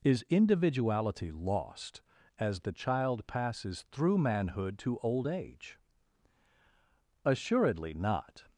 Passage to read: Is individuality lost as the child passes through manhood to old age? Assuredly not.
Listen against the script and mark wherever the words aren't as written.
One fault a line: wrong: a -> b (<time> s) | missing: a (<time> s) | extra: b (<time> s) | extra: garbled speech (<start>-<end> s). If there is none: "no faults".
no faults